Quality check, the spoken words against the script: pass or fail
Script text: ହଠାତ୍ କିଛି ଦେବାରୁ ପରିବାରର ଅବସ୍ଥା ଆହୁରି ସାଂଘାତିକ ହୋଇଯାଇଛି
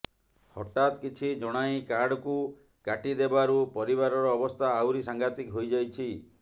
fail